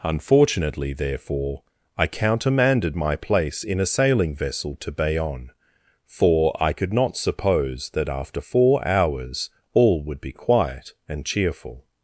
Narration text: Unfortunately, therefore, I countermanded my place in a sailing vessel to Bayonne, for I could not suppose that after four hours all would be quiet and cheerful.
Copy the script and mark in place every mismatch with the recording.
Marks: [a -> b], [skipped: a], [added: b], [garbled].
Unfortunately, therefore, I countermanded my place in a sailing vessel to Bayonne, for I could not suppose that after four hours all would be quiet and cheerful.